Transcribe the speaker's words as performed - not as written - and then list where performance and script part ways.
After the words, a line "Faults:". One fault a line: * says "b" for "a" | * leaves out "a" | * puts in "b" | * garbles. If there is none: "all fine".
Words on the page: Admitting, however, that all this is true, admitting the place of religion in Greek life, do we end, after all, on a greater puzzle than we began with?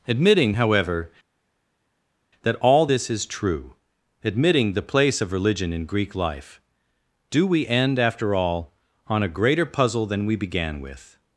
Admitting, however, that all this is true, admitting the place of religion in Greek life, do we end, after all, on a greater puzzle than we began with?
Faults:
all fine